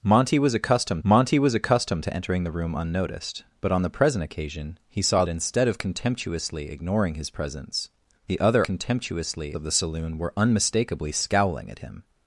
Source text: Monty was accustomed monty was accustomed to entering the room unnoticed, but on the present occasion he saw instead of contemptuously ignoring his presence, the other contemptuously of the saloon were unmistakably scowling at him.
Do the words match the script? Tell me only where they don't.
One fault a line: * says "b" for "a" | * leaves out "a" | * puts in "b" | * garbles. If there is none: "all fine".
all fine